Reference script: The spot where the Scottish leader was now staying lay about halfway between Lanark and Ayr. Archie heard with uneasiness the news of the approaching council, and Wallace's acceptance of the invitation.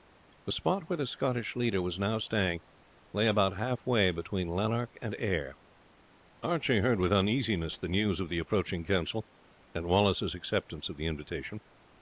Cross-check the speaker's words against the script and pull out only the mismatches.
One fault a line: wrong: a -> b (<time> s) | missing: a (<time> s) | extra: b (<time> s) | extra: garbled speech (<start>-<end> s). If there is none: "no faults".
no faults